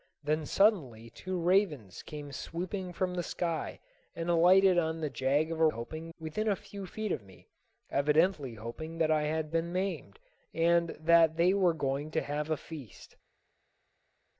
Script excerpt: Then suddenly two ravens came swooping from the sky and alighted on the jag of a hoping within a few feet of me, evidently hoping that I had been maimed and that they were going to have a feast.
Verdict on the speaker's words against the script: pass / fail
pass